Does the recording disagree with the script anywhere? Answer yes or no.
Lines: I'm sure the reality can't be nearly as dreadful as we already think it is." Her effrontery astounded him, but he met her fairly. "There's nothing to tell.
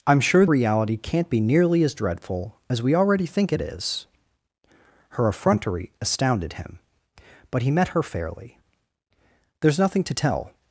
yes